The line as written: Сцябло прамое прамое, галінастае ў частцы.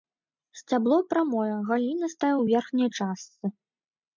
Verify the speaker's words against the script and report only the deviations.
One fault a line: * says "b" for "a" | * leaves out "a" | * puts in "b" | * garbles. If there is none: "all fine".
* leaves out "прамое"
* puts in "верхняй"